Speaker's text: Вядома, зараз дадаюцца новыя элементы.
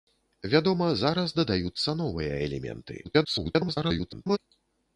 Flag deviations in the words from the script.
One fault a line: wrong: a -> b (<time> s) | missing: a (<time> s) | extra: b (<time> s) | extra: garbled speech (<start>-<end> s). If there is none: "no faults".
extra: garbled speech (3.0-4.4 s)